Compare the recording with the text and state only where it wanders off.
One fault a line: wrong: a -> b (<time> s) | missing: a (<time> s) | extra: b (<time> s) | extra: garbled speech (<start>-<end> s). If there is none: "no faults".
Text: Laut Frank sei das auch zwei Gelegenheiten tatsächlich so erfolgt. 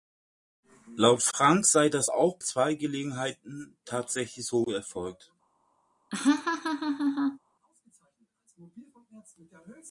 no faults